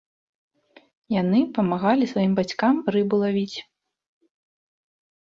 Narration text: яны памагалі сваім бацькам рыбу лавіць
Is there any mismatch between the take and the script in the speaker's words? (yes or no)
no